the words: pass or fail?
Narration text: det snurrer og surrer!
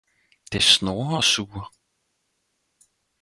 pass